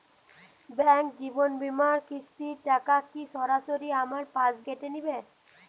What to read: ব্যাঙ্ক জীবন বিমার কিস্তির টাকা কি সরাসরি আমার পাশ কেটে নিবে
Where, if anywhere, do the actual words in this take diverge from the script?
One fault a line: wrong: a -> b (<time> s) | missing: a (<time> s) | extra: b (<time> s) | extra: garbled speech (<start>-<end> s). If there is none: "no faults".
no faults